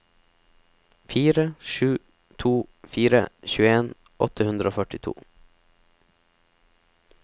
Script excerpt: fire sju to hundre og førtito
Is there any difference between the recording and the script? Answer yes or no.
yes